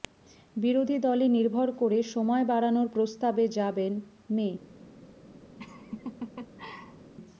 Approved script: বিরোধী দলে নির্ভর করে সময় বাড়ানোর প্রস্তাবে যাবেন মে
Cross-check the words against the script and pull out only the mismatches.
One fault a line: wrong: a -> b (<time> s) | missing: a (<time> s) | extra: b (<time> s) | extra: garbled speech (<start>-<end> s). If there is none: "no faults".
no faults